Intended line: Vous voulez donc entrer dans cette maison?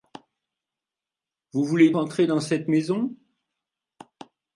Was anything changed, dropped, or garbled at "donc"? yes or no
yes